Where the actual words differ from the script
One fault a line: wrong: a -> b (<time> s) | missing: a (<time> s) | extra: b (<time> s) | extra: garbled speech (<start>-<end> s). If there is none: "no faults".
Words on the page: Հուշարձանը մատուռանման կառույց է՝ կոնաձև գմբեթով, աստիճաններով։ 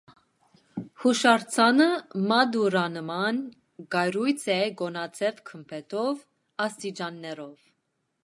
no faults